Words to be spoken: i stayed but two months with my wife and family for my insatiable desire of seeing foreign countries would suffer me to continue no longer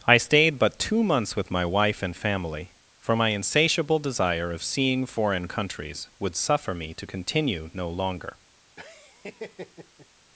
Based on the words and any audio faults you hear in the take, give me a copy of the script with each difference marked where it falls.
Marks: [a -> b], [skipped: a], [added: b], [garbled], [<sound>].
i stayed but two months with my wife and family for my insatiable desire of seeing foreign countries would suffer me to continue no longer [laugh]